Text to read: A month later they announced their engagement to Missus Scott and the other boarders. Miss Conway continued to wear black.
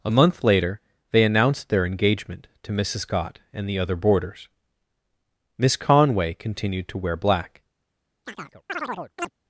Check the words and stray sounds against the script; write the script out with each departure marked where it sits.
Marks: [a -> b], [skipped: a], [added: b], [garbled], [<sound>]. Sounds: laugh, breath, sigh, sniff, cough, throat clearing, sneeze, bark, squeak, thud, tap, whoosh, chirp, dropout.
A month later they announced their engagement to Missus Scott and the other boarders. Miss Conway continued to wear black. [chirp]